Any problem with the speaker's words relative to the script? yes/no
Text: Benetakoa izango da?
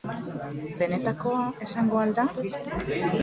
yes